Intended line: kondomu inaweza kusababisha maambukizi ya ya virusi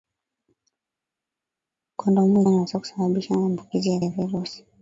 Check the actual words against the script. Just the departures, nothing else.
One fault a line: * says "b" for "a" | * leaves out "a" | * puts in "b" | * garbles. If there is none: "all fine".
all fine